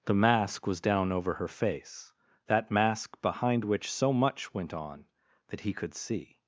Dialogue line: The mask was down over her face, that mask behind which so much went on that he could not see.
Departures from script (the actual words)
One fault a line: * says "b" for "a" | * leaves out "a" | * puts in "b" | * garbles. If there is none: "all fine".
* leaves out "not"